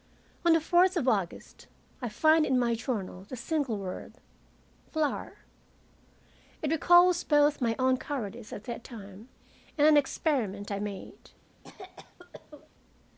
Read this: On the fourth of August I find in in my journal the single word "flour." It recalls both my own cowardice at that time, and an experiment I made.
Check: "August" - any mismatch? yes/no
no